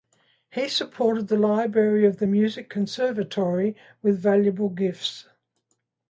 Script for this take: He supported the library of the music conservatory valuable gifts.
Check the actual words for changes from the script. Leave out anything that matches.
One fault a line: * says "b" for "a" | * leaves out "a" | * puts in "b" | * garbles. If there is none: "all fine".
* puts in "with"